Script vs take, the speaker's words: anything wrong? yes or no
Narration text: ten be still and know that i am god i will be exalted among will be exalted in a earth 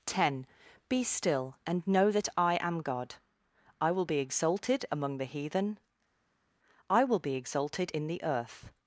yes